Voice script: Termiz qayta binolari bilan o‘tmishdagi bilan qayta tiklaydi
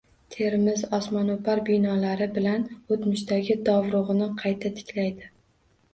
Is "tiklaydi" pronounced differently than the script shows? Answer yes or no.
no